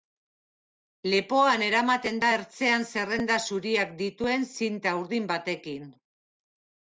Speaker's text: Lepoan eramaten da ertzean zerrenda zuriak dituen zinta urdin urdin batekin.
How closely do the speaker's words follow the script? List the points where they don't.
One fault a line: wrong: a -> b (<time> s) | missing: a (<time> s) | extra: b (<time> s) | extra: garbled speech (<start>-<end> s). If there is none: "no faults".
missing: urdin (5.3 s)